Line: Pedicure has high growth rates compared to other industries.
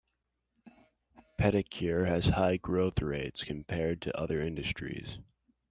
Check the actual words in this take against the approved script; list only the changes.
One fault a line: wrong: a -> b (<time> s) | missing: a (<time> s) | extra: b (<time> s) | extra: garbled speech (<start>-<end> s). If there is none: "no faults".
no faults